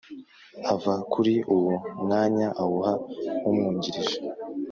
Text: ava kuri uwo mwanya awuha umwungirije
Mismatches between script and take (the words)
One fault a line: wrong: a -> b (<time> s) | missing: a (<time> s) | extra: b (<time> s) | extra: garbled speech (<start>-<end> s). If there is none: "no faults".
no faults